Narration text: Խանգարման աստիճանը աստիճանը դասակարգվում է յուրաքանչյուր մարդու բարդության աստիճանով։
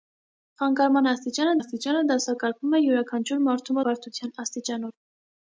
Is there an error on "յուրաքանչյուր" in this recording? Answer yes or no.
no